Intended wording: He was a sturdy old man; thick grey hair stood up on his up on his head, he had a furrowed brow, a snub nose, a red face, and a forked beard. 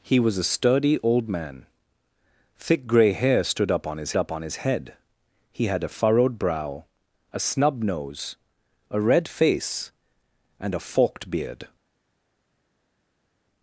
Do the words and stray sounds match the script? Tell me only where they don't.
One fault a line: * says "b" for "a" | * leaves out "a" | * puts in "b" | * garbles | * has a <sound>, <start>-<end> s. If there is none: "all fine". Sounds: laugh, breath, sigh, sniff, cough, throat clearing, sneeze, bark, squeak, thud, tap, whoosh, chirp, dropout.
all fine